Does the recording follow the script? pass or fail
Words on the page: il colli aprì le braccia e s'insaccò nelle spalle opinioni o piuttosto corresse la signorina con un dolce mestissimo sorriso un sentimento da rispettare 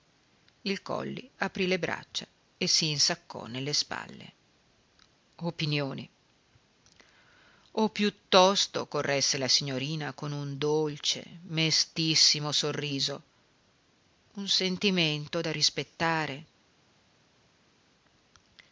pass